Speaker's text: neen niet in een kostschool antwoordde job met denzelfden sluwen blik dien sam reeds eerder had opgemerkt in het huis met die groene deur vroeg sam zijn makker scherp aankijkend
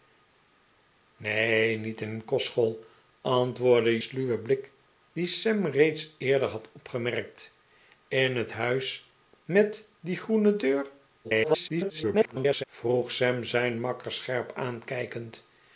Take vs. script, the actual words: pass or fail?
fail